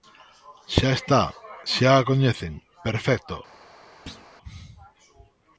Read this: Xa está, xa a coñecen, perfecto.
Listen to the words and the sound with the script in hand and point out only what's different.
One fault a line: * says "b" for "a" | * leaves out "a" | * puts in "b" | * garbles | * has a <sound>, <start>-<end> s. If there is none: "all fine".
* has a thud, 4.1-4.3 s